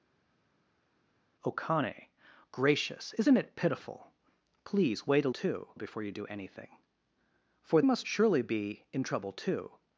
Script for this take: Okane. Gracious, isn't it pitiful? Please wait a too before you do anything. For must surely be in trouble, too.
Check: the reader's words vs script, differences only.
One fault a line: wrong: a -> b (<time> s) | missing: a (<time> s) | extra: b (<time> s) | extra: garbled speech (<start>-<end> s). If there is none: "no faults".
no faults